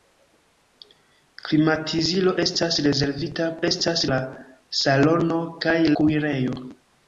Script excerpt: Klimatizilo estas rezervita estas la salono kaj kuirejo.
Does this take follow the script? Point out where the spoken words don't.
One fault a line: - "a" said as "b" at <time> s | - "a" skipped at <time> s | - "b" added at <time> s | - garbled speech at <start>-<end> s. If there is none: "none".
none